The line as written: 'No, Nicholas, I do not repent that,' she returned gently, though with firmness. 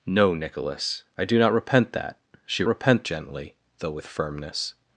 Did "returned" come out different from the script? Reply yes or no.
yes